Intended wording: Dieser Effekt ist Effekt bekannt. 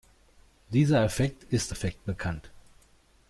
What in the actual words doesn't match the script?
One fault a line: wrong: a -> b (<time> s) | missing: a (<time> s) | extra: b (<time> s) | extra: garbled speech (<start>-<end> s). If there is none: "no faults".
no faults